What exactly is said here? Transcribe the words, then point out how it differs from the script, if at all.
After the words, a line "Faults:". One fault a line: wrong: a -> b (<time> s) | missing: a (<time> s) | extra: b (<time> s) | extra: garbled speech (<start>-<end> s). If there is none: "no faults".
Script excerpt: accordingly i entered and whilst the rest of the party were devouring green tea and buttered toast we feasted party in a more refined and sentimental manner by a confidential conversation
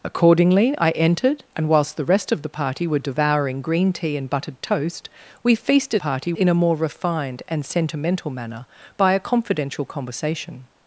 accordingly i entered and whilst the rest of the party were devouring green tea and buttered toast we feasted party in a more refined and sentimental manner by a confidential conversation
Faults:
no faults